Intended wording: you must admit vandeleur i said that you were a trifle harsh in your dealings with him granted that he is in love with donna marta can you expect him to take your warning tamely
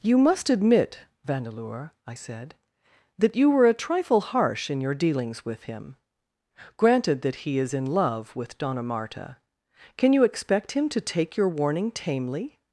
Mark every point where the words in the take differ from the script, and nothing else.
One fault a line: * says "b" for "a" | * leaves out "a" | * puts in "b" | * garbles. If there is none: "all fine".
all fine